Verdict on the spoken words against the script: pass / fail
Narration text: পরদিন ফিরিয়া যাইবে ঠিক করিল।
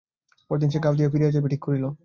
fail